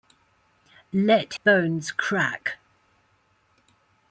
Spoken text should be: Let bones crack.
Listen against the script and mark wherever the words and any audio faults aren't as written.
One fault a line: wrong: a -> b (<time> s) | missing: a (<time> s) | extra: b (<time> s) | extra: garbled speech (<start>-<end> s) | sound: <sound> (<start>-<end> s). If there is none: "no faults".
no faults